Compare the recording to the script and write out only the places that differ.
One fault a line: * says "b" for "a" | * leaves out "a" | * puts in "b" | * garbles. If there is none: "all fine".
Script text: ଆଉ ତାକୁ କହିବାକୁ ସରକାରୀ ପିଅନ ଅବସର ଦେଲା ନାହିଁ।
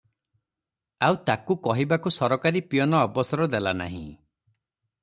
all fine